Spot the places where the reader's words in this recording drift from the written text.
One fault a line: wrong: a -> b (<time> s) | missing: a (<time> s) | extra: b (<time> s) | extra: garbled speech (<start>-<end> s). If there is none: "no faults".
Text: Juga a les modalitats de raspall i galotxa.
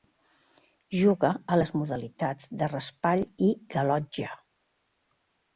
no faults